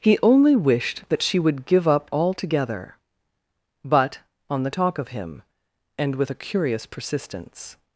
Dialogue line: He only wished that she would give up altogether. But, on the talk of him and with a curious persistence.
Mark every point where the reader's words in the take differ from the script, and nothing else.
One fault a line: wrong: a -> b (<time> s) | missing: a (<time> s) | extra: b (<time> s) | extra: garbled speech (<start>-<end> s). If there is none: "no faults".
no faults